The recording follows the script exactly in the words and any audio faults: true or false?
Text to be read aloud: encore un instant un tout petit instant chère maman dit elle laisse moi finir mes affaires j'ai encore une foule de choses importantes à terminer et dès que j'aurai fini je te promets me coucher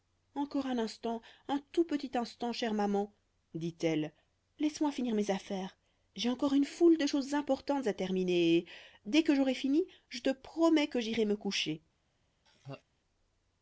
false